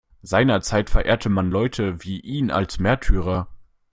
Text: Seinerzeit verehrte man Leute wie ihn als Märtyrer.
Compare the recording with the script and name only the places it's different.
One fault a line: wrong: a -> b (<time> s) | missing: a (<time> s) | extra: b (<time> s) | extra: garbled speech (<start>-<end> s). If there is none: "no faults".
no faults